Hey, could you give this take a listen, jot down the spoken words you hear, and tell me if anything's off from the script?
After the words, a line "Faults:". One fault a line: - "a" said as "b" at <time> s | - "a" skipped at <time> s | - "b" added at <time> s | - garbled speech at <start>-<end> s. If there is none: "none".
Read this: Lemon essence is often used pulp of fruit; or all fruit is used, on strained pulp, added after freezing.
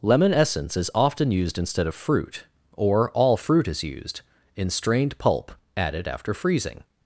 Lemon essence is often used instead of fruit; or all fruit is used, in strained pulp, added after freezing.
Faults:
- "pulp" said as "instead" at 1.6 s
- "on" said as "in" at 4.5 s